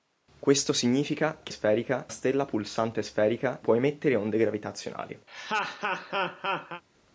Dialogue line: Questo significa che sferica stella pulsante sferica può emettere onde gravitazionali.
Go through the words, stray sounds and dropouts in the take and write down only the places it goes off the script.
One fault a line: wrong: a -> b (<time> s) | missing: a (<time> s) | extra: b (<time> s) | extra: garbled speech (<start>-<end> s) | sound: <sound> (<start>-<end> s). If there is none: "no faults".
sound: laugh (5.3-6.8 s)